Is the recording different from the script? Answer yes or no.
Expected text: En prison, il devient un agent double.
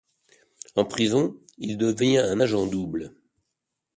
no